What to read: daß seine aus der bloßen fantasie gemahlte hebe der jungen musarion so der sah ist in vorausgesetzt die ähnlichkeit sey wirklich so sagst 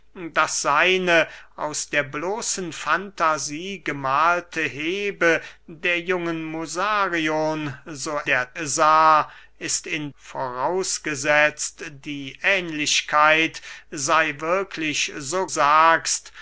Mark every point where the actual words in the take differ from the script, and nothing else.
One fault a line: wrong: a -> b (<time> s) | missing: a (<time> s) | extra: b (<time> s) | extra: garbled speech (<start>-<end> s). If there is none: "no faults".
no faults